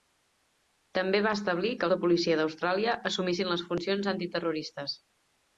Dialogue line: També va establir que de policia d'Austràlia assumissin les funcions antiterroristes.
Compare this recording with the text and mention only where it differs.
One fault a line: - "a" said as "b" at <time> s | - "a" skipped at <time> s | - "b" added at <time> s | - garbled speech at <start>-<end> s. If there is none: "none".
none